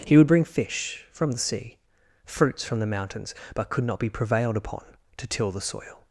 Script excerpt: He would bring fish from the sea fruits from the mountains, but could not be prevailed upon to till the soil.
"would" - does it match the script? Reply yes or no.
yes